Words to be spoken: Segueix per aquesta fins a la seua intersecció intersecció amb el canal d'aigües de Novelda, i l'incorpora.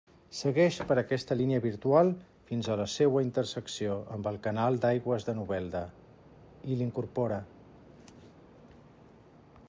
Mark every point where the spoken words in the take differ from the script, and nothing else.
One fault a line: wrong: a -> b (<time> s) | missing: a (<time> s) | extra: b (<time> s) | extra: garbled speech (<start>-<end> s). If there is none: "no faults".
extra: línia virtual (1.4 s)
missing: intersecció (4.0 s)